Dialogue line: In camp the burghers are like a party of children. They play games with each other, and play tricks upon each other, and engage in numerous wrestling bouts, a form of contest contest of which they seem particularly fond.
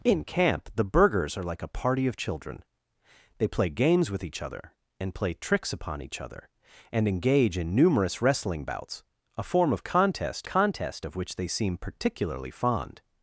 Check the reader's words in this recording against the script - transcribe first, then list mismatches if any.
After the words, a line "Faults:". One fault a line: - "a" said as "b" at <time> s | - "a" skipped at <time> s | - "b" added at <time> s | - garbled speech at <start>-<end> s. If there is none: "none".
In camp the burghers are like a party of children. They play games with each other, and play tricks upon each other, and engage in numerous wrestling bouts, a form of contest contest of which they seem particularly fond.
Faults:
none